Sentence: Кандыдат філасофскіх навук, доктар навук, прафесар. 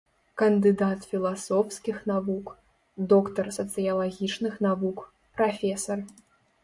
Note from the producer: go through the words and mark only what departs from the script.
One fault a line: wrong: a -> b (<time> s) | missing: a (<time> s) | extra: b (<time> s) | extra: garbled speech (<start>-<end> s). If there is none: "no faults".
extra: сацыялагічных (3.6 s)